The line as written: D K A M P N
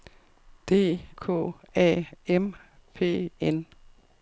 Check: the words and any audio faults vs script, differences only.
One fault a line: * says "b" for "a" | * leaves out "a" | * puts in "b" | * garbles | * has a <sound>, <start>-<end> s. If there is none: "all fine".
all fine